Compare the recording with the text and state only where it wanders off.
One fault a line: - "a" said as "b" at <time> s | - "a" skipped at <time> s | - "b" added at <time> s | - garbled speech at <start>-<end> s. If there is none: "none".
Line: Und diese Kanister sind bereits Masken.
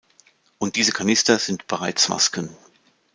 none